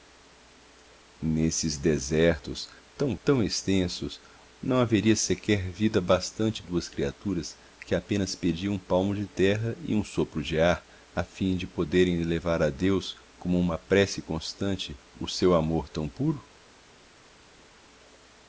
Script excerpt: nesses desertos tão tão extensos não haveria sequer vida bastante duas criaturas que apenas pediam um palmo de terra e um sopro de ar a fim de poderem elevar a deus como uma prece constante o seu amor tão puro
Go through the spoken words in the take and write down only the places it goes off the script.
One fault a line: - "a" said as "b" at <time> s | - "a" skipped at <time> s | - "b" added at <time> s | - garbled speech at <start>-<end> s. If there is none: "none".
none